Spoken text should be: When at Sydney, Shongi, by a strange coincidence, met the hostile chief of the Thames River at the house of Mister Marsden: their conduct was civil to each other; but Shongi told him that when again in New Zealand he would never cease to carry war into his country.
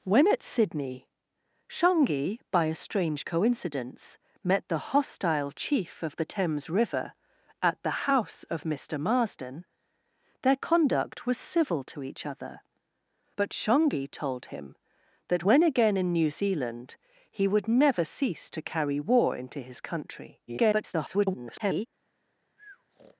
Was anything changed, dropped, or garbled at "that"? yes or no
no